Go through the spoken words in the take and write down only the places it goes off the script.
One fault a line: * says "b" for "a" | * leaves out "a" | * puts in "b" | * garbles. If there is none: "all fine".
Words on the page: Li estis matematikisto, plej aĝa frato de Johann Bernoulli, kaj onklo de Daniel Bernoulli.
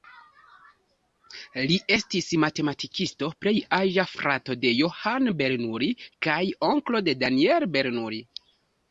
all fine